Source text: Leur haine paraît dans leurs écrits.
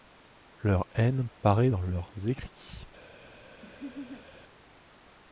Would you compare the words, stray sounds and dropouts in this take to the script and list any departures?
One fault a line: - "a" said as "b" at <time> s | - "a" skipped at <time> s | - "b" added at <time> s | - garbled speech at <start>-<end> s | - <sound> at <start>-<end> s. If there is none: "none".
- laugh at 3.6-4.3 s